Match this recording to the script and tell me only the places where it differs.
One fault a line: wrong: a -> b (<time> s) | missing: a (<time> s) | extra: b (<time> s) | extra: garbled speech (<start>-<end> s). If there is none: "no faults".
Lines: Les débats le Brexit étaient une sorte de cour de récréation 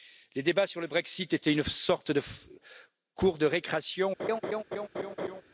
extra: sur (0.7 s)